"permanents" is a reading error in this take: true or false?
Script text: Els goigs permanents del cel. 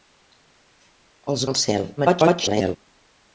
true